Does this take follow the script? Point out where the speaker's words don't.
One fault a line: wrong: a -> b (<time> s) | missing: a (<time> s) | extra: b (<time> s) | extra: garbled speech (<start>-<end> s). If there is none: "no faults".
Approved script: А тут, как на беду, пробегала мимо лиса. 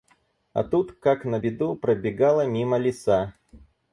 no faults